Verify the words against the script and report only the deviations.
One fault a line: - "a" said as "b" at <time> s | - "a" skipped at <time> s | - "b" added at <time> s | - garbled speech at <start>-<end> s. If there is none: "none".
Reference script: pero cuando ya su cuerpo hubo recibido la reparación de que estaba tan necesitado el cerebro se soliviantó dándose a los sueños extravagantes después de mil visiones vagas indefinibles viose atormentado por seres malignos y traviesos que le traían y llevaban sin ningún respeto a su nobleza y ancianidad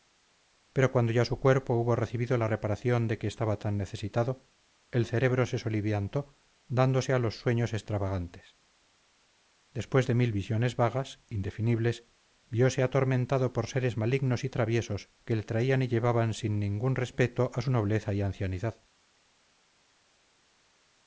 none